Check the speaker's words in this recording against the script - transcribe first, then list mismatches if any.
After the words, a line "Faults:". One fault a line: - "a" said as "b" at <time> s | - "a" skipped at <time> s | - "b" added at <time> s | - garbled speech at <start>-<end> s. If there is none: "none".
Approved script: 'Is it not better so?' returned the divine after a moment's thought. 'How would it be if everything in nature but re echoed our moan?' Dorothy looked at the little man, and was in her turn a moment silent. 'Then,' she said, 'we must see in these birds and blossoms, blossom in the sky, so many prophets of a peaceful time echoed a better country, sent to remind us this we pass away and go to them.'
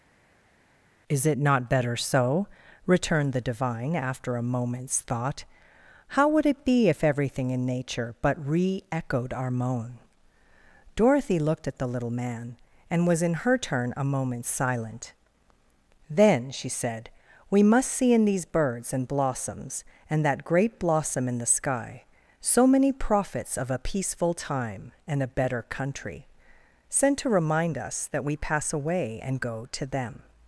'Is it not better so?' returned the divine after a moment's thought. 'How would it be if everything in nature but re echoed our moan?' Dorothy looked at the little man, and was in her turn a moment silent. 'Then,' she said, 'we must see in these birds and blossoms, and that great blossom in the sky, so many prophets of a peaceful time and a better country, sent to remind us that we pass away and go to them.'
Faults:
- "and that great" added at 20.1 s
- "echoed" said as "and" at 25.1 s
- "this" said as "that" at 28.1 s